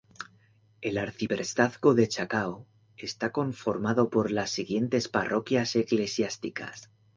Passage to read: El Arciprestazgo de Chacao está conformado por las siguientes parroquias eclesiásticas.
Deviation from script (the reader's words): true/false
false